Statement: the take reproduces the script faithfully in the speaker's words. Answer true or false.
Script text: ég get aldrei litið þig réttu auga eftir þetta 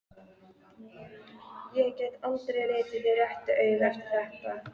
true